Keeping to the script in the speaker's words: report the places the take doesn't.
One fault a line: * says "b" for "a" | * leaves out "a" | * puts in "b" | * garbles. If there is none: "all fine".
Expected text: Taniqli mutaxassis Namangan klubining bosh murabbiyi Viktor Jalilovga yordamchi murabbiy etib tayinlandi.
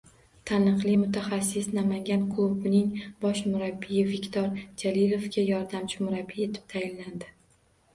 all fine